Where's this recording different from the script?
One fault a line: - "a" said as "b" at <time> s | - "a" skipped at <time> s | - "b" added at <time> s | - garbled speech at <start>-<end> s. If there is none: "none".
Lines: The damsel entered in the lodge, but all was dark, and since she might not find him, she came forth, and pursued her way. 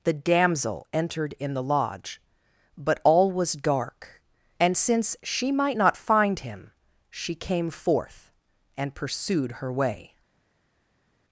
none